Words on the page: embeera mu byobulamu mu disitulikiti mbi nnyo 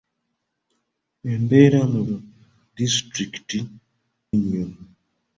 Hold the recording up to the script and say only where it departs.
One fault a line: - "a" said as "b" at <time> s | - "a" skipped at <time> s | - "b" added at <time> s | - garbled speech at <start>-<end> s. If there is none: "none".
- "byobulamu" skipped at 2.0 s
- "mbi" skipped at 3.6 s